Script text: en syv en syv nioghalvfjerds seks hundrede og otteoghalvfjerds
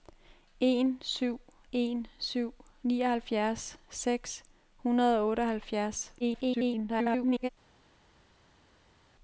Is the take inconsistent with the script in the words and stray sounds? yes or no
yes